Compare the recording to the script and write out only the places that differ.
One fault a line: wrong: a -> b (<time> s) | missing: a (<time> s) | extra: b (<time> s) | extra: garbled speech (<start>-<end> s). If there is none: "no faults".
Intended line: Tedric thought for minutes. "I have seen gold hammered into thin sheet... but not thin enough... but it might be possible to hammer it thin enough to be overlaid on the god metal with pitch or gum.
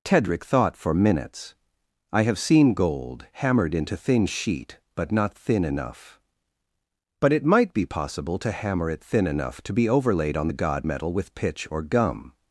no faults